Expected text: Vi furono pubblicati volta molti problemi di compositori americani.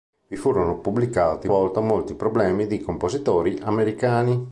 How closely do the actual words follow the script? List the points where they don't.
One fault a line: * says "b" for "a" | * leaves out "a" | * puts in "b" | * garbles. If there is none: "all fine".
all fine